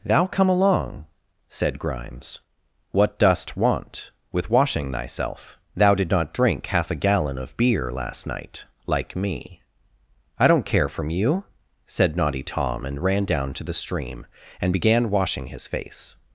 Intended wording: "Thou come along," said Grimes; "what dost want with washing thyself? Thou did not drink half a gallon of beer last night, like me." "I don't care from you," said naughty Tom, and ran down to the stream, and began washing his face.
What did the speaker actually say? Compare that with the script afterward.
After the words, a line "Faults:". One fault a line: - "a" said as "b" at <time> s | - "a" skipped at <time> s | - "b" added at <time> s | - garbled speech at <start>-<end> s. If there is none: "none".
"Thou come along," said Grimes; "what dost want with washing thyself? Thou did not drink half a gallon of beer last night, like me." "I don't care from you," said naughty Tom, and ran down to the stream, and began washing his face.
Faults:
none